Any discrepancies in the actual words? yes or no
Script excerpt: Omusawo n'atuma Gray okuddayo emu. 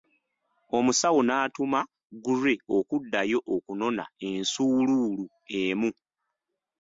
yes